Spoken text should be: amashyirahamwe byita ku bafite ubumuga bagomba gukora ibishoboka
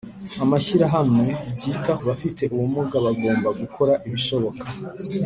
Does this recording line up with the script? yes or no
no